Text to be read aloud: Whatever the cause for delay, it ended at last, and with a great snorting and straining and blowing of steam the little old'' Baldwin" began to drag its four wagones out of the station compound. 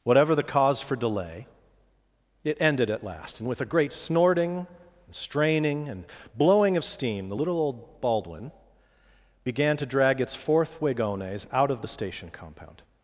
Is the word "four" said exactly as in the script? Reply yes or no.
no